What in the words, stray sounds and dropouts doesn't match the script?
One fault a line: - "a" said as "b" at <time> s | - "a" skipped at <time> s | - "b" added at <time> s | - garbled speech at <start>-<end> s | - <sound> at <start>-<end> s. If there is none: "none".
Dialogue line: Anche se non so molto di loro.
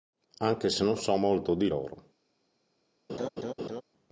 - laugh at 3.1-3.8 s